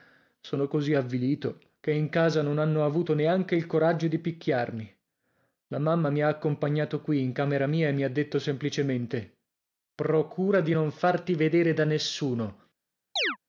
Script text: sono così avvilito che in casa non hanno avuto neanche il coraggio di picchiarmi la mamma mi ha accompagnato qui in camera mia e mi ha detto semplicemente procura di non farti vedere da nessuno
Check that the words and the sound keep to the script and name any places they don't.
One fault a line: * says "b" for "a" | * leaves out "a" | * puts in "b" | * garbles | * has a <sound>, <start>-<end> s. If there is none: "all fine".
* has a chirp, 13.2-13.4 s